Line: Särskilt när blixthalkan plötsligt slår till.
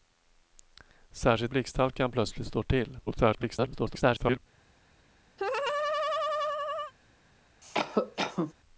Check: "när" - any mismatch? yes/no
yes